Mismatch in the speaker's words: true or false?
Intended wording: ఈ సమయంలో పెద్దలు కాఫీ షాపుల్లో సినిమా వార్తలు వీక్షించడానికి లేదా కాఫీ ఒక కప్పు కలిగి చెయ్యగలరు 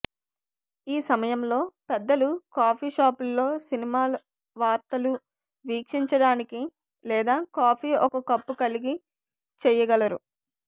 false